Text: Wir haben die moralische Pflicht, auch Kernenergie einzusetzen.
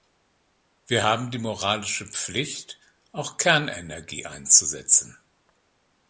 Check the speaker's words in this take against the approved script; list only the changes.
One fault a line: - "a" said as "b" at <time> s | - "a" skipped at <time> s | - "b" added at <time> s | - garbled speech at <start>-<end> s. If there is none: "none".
none